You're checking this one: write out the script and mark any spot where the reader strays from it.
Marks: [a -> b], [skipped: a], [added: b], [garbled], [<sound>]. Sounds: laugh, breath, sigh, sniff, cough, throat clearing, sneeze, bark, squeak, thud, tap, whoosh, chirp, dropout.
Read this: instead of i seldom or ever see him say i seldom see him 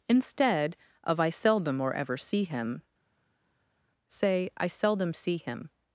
instead of i seldom or ever see him say i seldom see him